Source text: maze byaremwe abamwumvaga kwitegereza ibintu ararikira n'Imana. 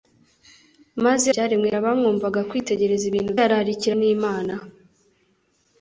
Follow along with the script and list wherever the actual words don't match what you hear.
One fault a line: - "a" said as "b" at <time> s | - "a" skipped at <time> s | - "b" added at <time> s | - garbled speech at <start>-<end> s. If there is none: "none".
none